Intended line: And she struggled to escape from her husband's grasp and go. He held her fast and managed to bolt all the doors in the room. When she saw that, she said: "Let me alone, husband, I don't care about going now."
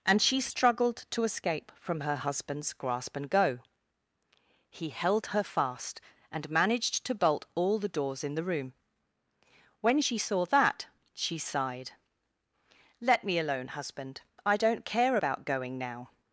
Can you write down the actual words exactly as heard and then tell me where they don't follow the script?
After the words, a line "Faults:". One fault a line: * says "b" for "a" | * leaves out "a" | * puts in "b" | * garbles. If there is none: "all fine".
And she struggled to escape from her husband's grasp and go. He held her fast and managed to bolt all the doors in the room. When she saw that, she sighed: "Let me alone, husband, I don't care about going now."
Faults:
* says "sighed" for "said"